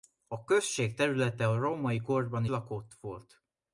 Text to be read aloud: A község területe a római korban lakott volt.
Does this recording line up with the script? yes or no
yes